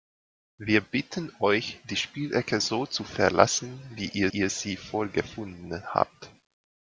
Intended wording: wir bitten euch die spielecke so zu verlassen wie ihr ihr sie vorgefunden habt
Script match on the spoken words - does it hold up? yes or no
yes